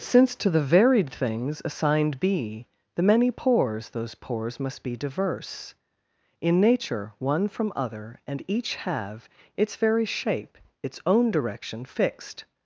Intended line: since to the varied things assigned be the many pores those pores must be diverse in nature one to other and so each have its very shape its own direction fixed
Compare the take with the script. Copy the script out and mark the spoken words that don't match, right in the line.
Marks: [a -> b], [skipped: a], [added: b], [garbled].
since to the varied things assigned be the many pores those pores must be diverse in nature one [to -> from] other and [skipped: so] each have its very shape its own direction fixed